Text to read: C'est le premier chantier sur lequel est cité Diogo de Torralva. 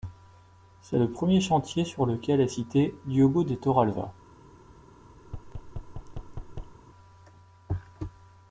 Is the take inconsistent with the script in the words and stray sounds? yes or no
yes